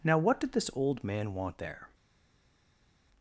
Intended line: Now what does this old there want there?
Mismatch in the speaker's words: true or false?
true